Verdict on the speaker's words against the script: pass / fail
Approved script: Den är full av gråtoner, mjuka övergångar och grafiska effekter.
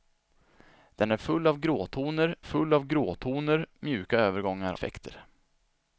fail